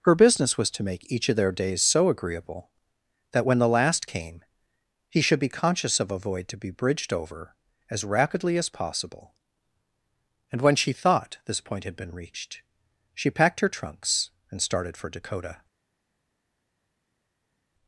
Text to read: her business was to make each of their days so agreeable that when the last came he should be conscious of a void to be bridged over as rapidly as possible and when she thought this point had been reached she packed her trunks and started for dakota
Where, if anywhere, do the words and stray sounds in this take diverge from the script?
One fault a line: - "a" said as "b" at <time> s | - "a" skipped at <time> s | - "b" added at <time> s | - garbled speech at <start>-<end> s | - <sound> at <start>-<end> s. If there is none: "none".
none